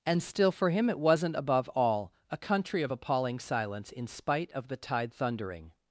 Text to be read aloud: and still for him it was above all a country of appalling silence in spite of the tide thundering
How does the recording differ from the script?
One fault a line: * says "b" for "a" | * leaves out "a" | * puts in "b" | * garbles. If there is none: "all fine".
* says "wasn't" for "was"